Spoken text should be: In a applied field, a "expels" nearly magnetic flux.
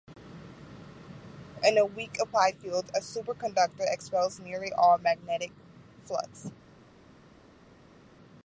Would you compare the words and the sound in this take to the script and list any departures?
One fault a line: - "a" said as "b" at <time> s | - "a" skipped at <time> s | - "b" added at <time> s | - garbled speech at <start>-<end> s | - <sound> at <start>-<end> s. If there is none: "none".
- "weak" added at 1.9 s
- "superconductor" added at 3.0 s
- "all" added at 4.7 s